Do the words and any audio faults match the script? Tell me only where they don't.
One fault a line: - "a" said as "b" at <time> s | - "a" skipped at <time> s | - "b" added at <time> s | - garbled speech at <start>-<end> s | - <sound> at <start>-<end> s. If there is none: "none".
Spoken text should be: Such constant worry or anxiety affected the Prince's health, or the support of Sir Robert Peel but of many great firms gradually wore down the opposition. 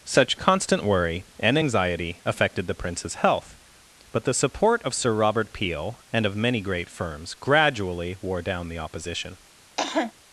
- "or" said as "and" at 1.4 s
- "or" said as "but" at 4.1 s
- "but" said as "and" at 6.1 s
- cough at 9.8-10.1 s